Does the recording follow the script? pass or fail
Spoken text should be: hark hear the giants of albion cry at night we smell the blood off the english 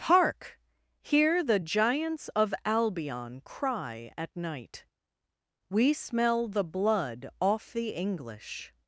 pass